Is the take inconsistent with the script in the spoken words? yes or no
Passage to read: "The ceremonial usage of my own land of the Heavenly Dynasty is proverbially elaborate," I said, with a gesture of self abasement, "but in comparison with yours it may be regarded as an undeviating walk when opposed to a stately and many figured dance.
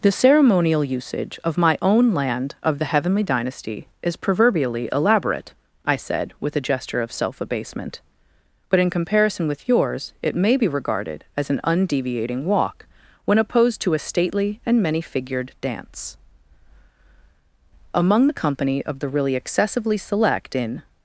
yes